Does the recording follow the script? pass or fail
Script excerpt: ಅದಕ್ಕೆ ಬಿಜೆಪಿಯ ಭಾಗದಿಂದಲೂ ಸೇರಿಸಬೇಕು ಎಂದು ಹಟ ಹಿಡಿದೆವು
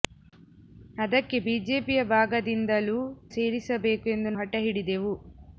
pass